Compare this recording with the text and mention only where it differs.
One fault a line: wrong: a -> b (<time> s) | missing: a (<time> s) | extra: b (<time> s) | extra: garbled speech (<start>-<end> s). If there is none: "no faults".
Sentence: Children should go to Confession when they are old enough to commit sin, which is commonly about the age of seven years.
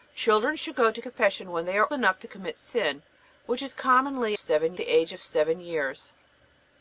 missing: old (1.9 s)
wrong: about -> seven (4.4 s)